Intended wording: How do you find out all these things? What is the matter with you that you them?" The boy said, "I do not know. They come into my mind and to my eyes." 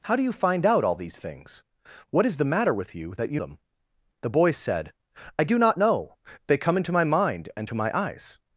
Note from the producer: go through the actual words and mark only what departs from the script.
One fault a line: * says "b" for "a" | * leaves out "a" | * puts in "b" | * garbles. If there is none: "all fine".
all fine